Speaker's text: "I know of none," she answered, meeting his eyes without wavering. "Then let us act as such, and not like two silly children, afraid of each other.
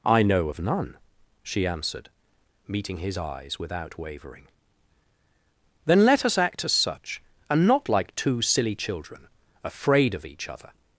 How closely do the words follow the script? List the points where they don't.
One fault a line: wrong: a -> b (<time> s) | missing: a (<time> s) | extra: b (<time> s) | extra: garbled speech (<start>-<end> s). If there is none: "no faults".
no faults